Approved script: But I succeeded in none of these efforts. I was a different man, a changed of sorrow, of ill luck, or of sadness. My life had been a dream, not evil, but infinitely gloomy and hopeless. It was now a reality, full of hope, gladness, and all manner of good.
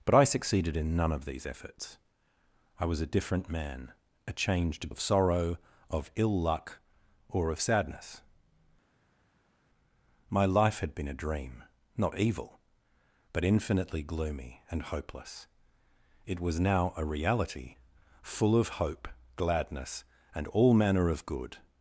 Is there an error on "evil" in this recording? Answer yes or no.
no